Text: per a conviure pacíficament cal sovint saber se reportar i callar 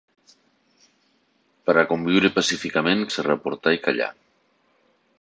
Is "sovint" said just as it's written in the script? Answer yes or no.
no